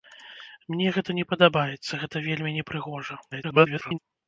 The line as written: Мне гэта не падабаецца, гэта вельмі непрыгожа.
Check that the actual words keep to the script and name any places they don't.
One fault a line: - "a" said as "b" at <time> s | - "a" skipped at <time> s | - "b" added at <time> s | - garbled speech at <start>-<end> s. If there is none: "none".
- garbled speech at 3.3-4.0 s